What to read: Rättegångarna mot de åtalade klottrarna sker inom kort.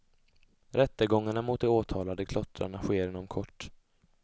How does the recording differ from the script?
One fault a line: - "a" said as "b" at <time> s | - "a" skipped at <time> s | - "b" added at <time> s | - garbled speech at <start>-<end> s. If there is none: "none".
none